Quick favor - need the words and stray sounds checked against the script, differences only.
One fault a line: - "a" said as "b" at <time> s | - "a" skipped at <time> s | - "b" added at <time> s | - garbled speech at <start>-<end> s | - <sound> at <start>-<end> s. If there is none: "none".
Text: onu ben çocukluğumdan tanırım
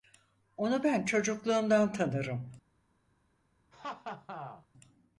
- laugh at 3.7-4.7 s